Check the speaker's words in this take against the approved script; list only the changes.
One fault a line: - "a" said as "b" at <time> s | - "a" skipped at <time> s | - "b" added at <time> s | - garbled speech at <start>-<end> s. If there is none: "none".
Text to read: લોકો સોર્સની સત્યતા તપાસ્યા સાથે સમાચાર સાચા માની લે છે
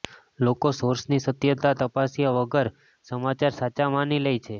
- "સાથે" said as "વગર" at 2.4 s